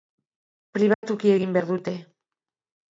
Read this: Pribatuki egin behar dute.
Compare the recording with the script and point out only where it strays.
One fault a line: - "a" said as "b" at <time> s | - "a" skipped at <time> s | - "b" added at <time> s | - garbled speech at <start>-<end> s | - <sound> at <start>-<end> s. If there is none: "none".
- dropout at 0.9-1.0 s